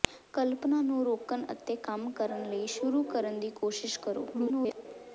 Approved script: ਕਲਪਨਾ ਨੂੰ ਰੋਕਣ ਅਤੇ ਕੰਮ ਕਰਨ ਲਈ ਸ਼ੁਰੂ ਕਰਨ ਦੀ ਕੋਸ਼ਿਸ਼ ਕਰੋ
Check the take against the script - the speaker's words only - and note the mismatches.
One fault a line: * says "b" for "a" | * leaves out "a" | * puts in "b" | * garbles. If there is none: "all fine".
* garbles